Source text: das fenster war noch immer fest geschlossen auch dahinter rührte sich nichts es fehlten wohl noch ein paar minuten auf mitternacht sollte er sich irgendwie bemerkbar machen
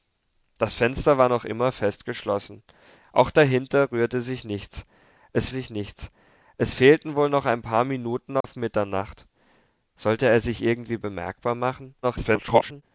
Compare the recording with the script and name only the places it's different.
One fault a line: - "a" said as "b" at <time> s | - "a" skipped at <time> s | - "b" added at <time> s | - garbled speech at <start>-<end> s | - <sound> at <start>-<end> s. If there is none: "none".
- "sich nichts es" added at 5.5 s
- dropout at 8.4-8.4 s
- garbled speech at 12.0-12.8 s